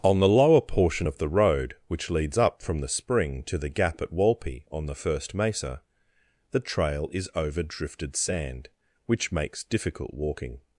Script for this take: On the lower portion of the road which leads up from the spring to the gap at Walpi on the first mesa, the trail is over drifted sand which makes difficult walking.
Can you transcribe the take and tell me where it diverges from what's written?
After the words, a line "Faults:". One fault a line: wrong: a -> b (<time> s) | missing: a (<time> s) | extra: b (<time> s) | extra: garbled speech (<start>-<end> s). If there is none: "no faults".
On the lower portion of the road which leads up from the spring to the gap at Walpi on the first mesa, the trail is over drifted sand which makes difficult walking.
Faults:
no faults